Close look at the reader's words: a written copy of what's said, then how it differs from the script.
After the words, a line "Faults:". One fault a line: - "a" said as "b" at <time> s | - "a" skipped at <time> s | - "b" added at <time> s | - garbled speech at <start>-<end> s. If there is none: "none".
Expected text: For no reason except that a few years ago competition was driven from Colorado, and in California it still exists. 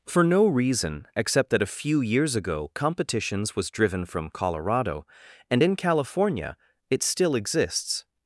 For no reason except that a few years ago competitions was driven from Colorado, and in California it still exists.
Faults:
- "competition" said as "competitions" at 2.7 s